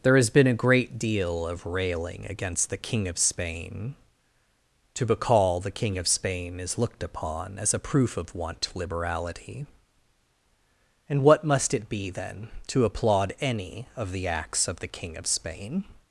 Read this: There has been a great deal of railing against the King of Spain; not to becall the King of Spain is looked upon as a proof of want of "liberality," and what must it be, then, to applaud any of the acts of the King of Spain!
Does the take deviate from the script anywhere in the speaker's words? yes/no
yes